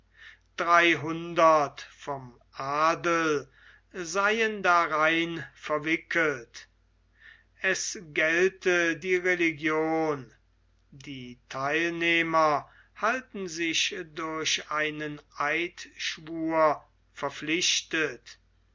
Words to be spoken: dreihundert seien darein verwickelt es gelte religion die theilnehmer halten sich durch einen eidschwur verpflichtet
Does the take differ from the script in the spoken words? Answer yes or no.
yes